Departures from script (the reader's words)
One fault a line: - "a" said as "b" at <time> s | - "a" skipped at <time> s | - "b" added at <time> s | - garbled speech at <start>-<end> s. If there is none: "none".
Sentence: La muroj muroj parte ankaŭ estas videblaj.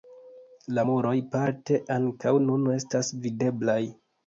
- "muroj" skipped at 1.1 s
- "nun" added at 2.5 s